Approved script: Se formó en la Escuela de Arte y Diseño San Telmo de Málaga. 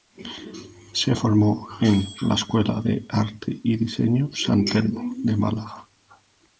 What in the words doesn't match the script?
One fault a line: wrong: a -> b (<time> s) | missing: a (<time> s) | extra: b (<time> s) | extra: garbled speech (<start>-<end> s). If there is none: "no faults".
no faults